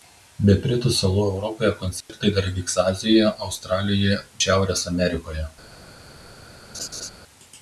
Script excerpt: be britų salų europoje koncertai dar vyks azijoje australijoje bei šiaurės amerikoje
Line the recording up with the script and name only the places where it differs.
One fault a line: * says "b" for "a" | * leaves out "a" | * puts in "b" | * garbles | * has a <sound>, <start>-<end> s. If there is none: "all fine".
* has a dropout, 2.0-2.1 s
* leaves out "bei"
* has a laugh, 6.7-7.1 s